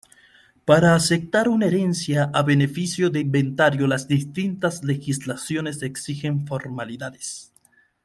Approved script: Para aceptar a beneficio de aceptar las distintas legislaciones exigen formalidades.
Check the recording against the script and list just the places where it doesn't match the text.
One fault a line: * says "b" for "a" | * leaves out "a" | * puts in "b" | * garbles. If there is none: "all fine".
* puts in "una herencia"
* says "inventario" for "aceptar"